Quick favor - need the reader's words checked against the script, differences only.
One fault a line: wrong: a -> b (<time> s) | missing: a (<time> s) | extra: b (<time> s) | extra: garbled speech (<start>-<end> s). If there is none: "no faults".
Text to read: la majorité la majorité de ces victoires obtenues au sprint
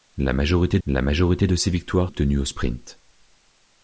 no faults